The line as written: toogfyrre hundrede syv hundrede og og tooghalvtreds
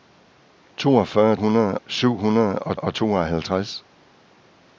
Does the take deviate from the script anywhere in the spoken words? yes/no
no